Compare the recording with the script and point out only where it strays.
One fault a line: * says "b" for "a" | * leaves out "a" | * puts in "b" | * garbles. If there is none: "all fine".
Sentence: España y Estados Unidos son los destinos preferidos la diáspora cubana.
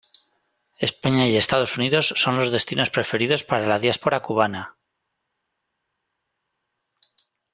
* puts in "para"